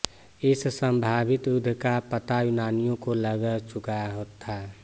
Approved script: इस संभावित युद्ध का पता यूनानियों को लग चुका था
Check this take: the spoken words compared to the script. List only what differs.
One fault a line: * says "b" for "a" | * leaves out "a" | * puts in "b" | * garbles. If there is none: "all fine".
all fine